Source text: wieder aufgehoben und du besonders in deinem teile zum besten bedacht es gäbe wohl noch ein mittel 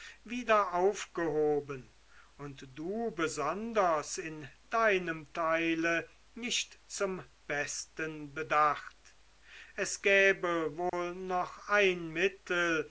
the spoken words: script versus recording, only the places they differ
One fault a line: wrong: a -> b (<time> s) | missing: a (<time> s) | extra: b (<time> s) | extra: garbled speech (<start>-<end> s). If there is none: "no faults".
extra: nicht (6.3 s)